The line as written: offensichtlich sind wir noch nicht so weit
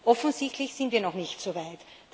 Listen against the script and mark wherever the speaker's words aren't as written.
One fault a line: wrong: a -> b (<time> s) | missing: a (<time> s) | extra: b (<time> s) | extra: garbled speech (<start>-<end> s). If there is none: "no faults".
no faults